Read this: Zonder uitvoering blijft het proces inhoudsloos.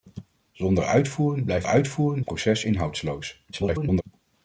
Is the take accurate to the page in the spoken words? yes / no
no